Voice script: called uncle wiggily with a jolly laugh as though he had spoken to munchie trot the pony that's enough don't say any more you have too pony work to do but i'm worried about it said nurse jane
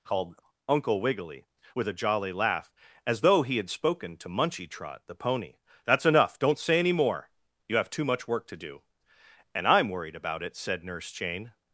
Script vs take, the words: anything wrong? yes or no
yes